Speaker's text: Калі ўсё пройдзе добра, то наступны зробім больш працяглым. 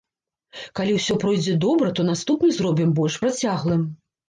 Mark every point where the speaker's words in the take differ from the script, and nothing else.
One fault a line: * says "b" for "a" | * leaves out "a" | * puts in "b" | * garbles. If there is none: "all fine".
all fine